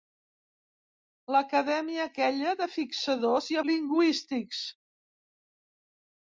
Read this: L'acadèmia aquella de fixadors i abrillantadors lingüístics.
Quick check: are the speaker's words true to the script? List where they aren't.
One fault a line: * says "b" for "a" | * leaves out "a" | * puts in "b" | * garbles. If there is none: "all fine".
* leaves out "abrillantadors"